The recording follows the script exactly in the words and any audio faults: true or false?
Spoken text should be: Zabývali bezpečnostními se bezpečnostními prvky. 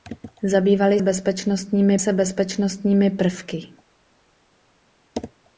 true